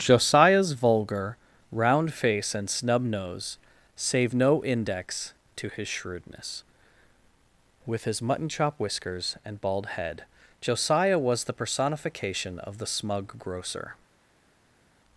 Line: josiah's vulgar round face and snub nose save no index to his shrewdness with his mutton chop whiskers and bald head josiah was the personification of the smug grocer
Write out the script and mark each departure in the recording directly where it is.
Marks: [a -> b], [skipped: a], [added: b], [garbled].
josiah's vulgar round face and snub nose save no index to his shrewdness with his mutton chop whiskers and bald head josiah was the personification of the smug grocer